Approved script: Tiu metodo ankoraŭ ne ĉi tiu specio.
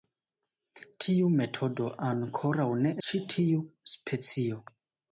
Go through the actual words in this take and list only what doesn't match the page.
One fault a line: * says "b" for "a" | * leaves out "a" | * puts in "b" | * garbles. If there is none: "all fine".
all fine